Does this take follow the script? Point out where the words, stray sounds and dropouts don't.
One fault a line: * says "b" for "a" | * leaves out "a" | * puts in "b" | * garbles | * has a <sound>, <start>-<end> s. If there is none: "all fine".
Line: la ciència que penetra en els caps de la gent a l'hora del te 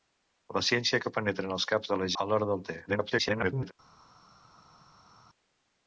* leaves out "gent"
* garbles